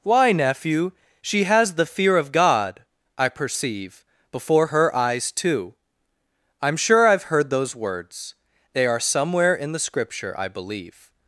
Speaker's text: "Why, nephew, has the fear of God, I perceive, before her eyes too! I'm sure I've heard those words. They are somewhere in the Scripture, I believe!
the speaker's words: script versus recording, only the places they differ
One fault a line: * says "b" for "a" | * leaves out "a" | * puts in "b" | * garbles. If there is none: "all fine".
* puts in "she"